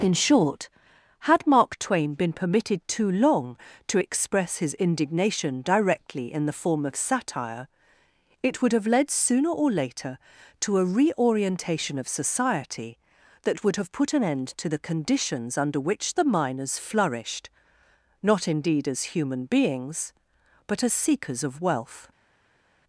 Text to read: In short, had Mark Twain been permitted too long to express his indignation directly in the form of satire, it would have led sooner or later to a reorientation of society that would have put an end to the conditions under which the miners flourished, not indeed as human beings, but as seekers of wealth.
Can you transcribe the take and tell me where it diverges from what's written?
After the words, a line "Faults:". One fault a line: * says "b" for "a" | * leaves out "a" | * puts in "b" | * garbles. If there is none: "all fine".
In short, had Mark Twain been permitted too long to express his indignation directly in the form of satire, it would have led sooner or later to a reorientation of society that would have put an end to the conditions under which the miners flourished, not indeed as human beings, but as seekers of wealth.
Faults:
all fine